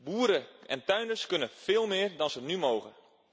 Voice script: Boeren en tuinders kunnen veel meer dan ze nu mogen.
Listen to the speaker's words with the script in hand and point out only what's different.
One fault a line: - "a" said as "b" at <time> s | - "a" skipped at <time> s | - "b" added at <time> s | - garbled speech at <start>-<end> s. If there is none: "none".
none